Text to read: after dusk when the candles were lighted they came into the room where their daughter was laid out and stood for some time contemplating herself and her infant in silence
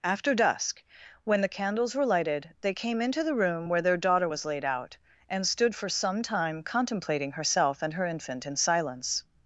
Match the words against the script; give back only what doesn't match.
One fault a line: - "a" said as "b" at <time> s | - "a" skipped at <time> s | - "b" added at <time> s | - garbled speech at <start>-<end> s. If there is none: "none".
none